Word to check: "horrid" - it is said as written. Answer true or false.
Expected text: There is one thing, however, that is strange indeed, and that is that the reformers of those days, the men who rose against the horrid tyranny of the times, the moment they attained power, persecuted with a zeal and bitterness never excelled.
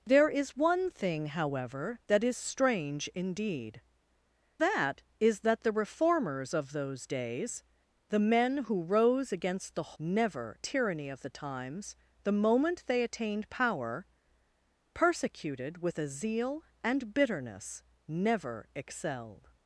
false